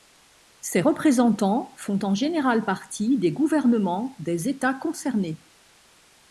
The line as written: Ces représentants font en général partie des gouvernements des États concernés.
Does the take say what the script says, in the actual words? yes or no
yes